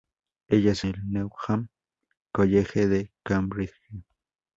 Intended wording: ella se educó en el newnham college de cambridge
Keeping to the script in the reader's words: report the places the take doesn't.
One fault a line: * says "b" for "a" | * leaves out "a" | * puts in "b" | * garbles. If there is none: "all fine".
* leaves out "educó en"